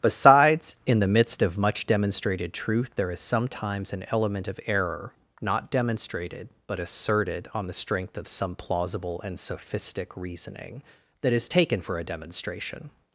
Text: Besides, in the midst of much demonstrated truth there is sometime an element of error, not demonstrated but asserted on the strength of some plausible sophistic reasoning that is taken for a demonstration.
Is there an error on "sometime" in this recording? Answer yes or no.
yes